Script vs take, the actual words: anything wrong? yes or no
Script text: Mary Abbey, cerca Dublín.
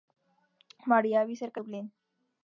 no